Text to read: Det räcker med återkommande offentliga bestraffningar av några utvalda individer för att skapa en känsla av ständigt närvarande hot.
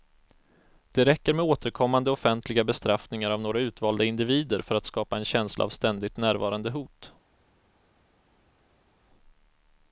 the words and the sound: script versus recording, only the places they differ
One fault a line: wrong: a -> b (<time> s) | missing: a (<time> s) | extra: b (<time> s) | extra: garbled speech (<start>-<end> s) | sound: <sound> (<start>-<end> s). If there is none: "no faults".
no faults